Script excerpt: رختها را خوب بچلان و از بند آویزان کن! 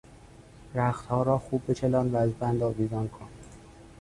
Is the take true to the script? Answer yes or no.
yes